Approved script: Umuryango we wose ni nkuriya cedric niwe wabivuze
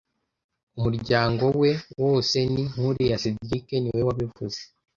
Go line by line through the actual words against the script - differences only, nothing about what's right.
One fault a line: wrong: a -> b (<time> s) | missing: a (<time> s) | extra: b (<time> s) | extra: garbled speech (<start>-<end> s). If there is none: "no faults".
no faults